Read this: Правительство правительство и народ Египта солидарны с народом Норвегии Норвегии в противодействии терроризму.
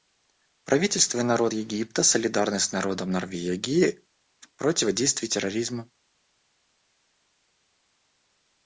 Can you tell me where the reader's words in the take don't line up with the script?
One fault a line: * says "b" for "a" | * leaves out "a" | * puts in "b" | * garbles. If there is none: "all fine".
* leaves out "правительство"
* leaves out "Норвегии"